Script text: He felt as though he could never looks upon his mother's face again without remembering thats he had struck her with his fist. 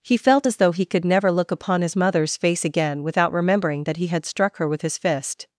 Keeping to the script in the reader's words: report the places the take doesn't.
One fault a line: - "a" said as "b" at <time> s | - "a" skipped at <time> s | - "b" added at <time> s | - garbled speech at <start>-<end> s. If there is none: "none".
- "looks" said as "look" at 1.3 s
- "thats" said as "that" at 3.8 s